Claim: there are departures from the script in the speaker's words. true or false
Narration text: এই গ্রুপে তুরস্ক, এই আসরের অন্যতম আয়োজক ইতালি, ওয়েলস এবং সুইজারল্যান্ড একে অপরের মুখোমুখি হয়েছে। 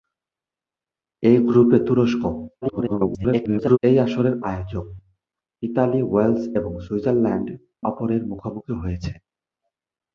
true